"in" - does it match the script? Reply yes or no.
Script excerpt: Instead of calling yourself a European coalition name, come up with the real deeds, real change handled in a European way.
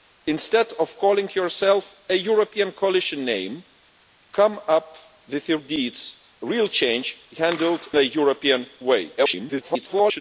no